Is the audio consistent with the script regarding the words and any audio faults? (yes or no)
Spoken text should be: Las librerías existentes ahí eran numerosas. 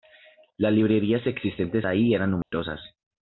no